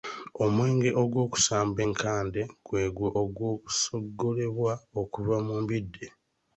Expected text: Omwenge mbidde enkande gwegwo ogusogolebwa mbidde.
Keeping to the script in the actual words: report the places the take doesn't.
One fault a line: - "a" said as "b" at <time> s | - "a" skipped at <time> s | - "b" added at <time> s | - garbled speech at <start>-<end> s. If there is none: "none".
- "mbidde" said as "ogwokusamba" at 1.0 s
- "okuva mu" added at 5.0 s